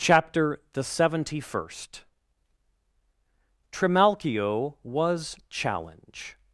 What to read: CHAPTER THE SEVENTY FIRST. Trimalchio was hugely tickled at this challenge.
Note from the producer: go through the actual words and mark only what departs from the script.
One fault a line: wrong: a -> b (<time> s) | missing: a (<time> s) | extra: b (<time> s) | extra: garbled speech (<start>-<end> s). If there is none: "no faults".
missing: hugely tickled at this (5.4 s)